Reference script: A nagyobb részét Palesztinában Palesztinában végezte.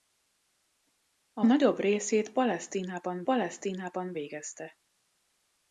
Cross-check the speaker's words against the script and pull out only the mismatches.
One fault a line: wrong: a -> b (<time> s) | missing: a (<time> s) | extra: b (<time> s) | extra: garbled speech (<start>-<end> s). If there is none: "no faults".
no faults